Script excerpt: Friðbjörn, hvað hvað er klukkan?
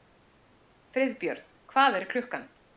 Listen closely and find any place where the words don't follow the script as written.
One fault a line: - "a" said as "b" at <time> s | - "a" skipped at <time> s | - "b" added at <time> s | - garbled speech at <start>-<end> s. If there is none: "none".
- "hvað" skipped at 2.0 s